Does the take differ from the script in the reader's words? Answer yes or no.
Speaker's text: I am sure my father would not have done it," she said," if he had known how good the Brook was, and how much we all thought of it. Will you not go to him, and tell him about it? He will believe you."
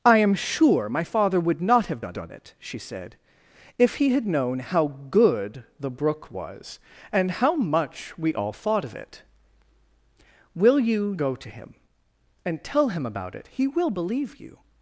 yes